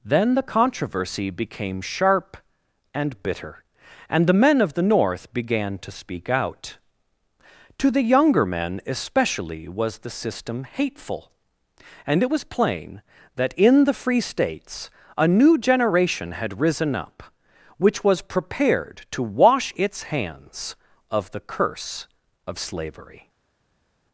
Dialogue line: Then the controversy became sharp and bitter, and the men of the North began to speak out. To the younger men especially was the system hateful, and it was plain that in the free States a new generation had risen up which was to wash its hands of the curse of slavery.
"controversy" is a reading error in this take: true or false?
false